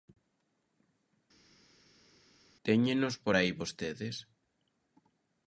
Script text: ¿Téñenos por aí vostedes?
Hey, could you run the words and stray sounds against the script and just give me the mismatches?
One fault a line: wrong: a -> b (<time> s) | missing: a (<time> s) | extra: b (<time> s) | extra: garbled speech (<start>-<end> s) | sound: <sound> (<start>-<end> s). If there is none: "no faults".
no faults